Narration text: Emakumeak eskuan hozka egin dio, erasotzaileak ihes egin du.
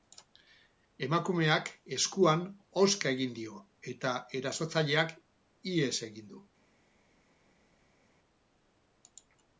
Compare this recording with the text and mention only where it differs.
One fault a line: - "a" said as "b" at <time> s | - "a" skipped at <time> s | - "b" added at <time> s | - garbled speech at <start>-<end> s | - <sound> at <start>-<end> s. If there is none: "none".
- "eta" added at 4.0 s